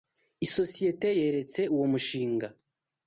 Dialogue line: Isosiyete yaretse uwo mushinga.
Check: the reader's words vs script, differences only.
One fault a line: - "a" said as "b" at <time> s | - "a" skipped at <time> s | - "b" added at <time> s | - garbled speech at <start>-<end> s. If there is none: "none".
none